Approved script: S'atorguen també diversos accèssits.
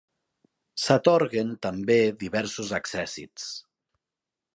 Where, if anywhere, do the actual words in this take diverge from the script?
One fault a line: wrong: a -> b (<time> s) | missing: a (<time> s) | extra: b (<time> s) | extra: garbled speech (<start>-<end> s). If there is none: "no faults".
no faults